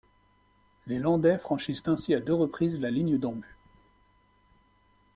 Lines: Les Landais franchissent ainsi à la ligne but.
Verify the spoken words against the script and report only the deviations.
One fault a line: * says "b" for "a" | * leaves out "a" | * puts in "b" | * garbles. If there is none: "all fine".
* puts in "deux reprises"
* puts in "d'en"